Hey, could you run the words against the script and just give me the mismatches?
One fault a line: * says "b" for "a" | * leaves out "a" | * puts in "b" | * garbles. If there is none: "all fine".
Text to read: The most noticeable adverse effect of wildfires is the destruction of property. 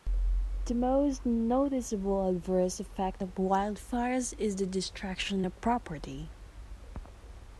all fine